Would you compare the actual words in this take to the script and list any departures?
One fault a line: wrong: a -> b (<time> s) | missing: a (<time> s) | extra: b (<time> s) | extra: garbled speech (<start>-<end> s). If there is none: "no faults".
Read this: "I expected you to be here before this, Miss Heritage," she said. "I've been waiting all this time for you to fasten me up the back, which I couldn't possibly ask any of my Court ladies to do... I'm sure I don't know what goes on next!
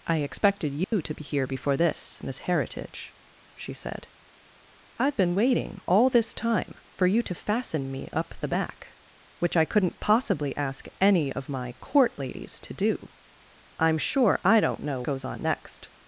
missing: what (15.0 s)